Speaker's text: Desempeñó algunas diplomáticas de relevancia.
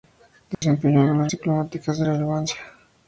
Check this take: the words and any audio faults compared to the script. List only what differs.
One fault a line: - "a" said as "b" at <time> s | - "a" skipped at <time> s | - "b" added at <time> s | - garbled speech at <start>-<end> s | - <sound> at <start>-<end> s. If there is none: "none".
- dropout at 0.5-0.6 s